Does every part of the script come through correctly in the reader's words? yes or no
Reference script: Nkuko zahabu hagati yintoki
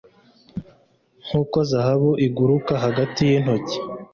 no